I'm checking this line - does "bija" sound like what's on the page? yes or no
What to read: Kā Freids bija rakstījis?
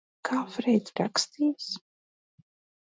no